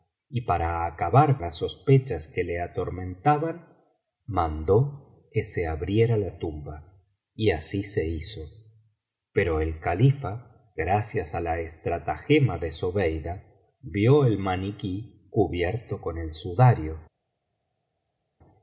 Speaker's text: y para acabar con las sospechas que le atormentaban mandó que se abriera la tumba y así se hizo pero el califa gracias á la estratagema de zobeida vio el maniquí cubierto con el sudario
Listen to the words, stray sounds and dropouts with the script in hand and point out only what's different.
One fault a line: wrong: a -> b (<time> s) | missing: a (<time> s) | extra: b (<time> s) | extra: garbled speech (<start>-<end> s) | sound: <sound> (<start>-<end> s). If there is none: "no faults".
missing: con (1.4 s)